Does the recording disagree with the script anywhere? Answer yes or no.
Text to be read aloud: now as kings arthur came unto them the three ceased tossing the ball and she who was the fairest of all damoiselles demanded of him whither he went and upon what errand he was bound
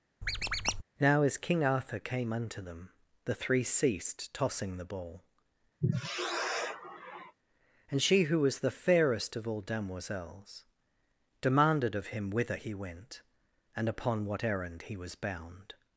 yes